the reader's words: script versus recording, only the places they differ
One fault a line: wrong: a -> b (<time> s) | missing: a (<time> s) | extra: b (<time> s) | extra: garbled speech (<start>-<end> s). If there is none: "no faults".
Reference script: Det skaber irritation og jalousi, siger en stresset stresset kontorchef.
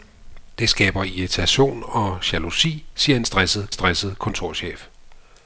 no faults